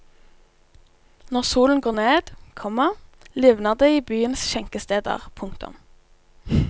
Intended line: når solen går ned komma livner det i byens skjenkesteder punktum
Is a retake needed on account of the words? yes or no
no